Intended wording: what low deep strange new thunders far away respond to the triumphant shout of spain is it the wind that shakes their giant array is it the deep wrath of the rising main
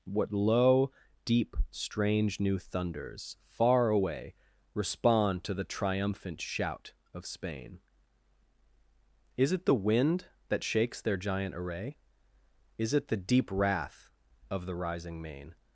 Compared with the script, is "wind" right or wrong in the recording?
right